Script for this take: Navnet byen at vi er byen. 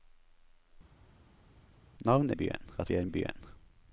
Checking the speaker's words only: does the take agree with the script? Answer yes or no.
yes